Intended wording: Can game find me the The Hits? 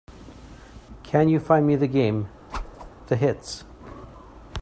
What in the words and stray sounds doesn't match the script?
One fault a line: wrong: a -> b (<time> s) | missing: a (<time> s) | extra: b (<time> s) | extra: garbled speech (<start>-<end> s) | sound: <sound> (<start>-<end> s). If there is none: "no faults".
wrong: game -> you (1.3 s)
extra: game (1.9 s)
sound: whoosh (2.5-2.9 s)